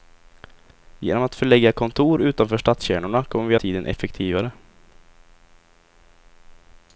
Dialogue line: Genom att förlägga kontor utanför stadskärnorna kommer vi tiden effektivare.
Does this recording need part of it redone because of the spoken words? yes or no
no